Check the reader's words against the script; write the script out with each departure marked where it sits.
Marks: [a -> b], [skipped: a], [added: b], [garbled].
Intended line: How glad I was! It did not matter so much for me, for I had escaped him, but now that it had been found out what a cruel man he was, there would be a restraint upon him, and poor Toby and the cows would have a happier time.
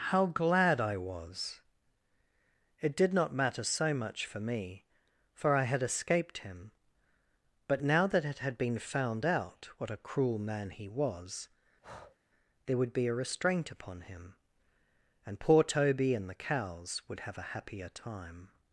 How glad I was! It did not matter so much for me, for I had escaped him, but now that it had been found out what a cruel man he was, there would be a restraint upon him, and poor Toby and the cows would have a happier time.